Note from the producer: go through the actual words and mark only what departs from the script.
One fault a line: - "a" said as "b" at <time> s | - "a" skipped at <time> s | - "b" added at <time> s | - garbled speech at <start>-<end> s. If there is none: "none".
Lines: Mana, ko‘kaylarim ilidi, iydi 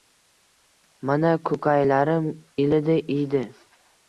none